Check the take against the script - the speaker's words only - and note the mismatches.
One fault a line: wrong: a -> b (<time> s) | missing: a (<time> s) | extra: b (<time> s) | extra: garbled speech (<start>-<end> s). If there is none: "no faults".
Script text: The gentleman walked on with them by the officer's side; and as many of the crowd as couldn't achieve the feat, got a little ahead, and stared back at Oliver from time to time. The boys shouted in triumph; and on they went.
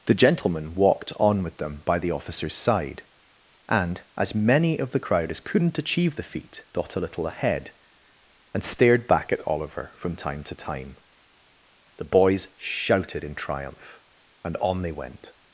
no faults